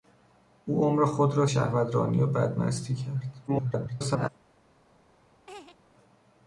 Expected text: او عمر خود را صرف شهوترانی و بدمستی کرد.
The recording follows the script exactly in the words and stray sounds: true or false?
false